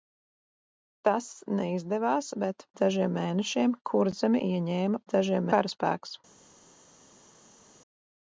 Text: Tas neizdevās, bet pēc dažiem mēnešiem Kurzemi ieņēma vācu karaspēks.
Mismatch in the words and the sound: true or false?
true